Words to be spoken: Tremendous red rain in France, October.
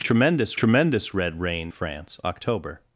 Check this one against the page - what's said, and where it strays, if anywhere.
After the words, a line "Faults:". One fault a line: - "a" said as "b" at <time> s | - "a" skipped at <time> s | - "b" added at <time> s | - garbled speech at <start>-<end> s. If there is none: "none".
Tremendous tremendous red rain France, October.
Faults:
- "tremendous" added at 0.6 s
- "in" skipped at 1.7 s